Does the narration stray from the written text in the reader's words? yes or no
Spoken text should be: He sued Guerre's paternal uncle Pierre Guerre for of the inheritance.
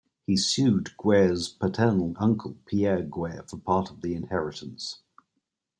yes